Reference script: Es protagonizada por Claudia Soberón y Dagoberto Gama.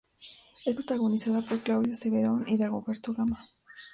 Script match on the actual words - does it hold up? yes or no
yes